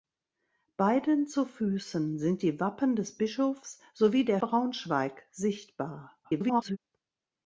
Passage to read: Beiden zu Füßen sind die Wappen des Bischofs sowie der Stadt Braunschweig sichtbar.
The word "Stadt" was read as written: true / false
false